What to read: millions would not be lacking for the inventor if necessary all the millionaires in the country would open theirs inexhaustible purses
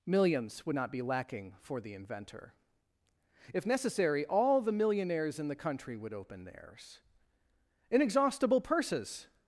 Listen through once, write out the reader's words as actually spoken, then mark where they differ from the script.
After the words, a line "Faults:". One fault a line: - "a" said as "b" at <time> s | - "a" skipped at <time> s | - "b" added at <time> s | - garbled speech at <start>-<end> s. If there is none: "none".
millions would not be lacking for the inventor if necessary all the millionaires in the country would open theirs inexhaustible purses
Faults:
none